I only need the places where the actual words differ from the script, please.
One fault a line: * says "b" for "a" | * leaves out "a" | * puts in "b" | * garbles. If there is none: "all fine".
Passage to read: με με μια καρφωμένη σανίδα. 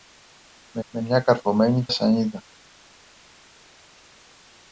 all fine